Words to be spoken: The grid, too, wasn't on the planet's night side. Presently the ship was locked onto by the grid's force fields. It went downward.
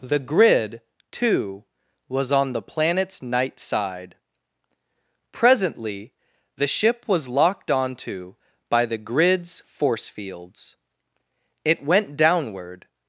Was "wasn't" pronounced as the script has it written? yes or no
no